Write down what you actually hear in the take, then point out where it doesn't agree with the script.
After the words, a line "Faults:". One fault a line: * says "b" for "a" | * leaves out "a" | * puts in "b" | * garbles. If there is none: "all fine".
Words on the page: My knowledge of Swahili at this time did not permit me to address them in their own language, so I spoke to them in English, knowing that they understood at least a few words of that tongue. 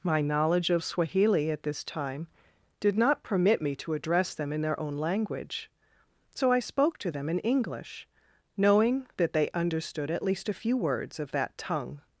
My knowledge of Swahili at this time did not permit me to address them in their own language, so I spoke to them in English, knowing that they understood at least a few words of that tongue.
Faults:
all fine